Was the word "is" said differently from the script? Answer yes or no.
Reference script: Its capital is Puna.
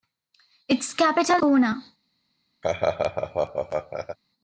yes